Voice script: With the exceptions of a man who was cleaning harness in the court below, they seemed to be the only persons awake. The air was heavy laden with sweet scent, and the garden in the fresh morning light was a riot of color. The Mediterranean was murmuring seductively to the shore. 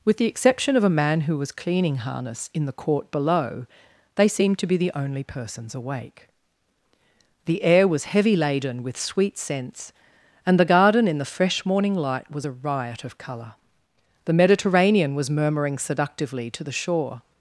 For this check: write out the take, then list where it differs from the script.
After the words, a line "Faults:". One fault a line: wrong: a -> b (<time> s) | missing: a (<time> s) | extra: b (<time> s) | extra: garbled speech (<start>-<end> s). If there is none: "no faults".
With the exception of a man who was cleaning harness in the court below, they seemed to be the only persons awake. The air was heavy laden with sweet scents, and the garden in the fresh morning light was a riot of color. The Mediterranean was murmuring seductively to the shore.
Faults:
wrong: exceptions -> exception (0.2 s)
wrong: scent -> scents (9.4 s)